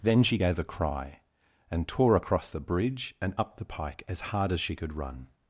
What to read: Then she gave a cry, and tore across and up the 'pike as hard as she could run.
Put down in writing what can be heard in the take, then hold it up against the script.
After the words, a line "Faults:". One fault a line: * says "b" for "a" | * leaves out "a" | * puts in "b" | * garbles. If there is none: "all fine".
Then she gave a cry, and tore across the bridge and up the 'pike as hard as she could run.
Faults:
* puts in "the bridge"